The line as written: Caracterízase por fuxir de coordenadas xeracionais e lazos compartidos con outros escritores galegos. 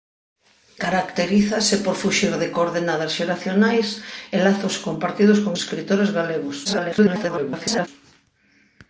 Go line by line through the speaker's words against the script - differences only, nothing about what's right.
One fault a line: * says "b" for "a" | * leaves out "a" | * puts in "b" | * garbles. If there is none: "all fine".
* leaves out "outros"
* garbles